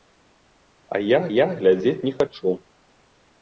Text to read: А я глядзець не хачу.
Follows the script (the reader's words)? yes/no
no